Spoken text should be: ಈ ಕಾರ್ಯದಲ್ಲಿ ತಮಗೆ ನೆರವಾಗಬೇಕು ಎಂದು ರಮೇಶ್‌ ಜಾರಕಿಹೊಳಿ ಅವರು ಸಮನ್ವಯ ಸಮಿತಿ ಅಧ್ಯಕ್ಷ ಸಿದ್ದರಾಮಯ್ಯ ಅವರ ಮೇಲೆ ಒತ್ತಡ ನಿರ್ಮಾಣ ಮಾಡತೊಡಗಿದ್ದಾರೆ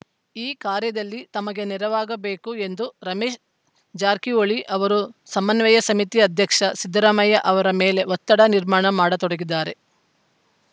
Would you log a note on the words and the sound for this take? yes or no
no